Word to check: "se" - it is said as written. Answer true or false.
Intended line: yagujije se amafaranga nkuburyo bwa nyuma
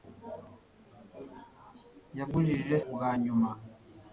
false